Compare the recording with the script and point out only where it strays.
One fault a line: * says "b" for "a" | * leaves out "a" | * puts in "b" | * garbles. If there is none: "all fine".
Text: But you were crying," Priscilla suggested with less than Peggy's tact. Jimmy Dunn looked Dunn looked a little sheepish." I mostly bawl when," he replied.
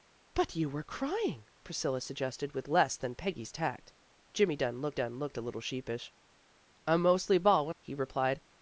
all fine